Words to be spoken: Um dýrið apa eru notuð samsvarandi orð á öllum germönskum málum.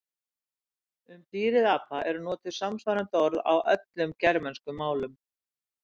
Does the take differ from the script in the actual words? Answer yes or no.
no